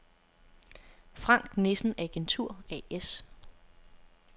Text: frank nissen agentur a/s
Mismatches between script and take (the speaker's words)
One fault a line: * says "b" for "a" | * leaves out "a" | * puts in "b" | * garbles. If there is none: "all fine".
all fine